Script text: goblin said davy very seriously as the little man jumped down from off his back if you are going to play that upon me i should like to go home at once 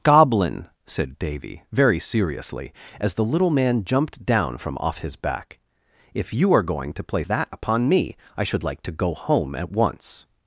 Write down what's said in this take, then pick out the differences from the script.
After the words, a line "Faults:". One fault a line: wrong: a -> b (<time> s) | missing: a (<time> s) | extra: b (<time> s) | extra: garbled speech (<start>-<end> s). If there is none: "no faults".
goblin said davy very seriously as the little man jumped down from off his back if you are going to play that upon me i should like to go home at once
Faults:
no faults